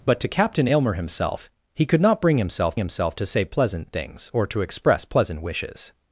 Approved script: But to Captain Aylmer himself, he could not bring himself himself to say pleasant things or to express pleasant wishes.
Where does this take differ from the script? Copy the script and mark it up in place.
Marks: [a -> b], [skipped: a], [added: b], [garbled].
But to Captain Aylmer himself, he could not bring himself himself to say pleasant things or to express pleasant wishes.